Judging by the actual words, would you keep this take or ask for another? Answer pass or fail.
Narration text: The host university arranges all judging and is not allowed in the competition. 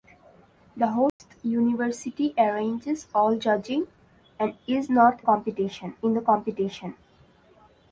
fail